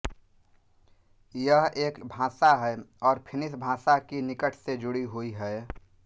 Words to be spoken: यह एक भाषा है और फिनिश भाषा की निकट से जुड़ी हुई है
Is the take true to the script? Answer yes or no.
yes